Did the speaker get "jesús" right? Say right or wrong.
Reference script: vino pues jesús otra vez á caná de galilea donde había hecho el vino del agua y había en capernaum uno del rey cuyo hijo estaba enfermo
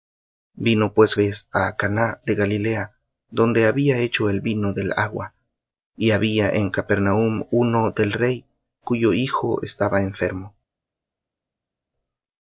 wrong